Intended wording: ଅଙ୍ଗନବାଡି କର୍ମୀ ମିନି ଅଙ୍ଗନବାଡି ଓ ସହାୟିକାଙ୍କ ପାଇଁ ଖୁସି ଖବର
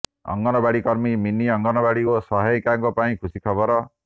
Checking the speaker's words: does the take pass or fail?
pass